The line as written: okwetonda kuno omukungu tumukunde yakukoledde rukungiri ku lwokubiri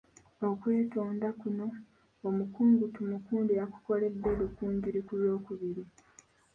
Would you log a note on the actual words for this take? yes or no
no